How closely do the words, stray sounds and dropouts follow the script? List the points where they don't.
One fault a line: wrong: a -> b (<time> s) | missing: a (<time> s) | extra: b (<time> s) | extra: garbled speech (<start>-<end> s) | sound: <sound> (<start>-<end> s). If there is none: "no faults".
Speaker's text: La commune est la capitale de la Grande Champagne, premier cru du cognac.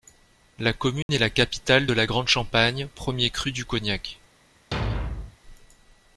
sound: dropout (1.0-1.1 s)
sound: thud (4.7-5.4 s)